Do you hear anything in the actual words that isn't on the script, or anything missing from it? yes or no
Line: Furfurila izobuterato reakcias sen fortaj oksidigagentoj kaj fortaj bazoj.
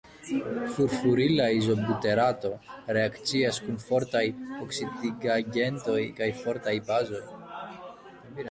yes